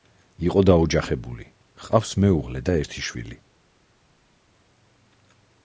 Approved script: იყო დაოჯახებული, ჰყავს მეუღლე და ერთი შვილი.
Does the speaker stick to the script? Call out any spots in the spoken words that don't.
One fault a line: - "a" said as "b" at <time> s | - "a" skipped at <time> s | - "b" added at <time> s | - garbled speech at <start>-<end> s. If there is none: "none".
none